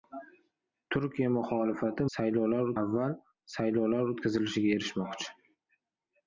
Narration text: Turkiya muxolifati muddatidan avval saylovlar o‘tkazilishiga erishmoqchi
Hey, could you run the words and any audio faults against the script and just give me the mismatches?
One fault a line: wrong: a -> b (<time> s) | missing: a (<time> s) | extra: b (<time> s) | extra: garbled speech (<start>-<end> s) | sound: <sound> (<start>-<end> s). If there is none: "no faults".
wrong: muddatidan -> saylovlar (2.2 s)